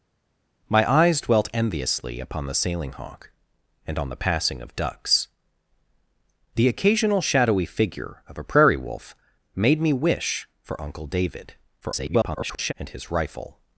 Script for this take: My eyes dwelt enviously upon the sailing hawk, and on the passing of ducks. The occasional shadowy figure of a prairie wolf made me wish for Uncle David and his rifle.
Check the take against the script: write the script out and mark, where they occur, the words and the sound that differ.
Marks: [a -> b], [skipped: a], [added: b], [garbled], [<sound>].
My eyes dwelt enviously upon the sailing hawk, and on the passing of ducks. The occasional shadowy figure of a prairie wolf made me wish for Uncle David [garbled] and his rifle.